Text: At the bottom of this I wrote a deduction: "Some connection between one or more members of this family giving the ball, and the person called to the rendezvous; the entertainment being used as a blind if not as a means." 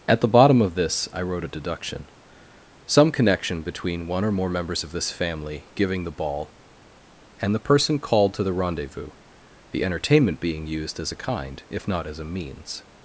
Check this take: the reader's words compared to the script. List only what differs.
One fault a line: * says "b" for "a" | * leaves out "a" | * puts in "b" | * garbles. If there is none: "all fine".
* says "kind" for "blind"